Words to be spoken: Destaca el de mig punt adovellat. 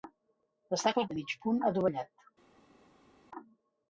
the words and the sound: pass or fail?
pass